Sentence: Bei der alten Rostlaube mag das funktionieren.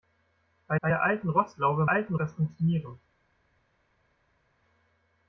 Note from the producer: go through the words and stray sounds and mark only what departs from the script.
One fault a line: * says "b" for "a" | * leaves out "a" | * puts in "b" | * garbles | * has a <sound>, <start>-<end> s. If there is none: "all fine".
* puts in "bei"
* says "alten" for "mag"